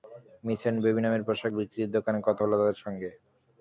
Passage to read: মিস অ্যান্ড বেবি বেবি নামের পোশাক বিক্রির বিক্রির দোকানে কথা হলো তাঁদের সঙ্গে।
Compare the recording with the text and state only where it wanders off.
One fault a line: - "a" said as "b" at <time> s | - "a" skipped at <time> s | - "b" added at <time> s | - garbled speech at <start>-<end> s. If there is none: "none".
- "বেবি" skipped at 1.0 s
- "বিক্রির" skipped at 1.9 s